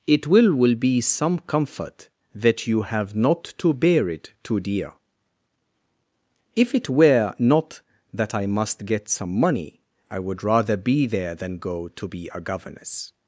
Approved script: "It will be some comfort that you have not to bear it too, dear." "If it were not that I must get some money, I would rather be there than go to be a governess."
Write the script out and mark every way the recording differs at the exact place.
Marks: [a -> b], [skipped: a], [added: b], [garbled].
"It will [added: will] be some comfort that you have not to bear it too, dear." "If it were not that I must get some money, I would rather be there than go to be a governess."